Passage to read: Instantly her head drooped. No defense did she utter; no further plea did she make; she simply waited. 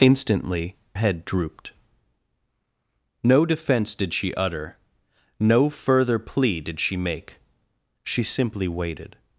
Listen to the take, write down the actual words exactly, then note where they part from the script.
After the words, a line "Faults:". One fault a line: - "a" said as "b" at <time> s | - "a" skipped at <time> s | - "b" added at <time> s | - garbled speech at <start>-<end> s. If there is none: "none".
Instantly head drooped. No defense did she utter; no further plea did she make; she simply waited.
Faults:
- "her" skipped at 0.8 s